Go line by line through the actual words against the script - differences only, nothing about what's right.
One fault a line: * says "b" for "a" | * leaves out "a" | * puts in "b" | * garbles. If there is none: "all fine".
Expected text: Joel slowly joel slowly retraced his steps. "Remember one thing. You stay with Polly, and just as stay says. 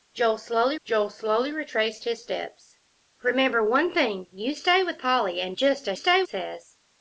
all fine